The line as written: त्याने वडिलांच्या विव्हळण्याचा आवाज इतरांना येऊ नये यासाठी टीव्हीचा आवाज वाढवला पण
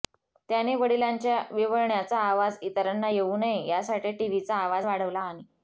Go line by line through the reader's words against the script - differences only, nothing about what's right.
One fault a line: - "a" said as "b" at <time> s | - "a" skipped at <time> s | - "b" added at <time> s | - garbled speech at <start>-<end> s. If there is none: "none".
- "पण" said as "आणि" at 5.2 s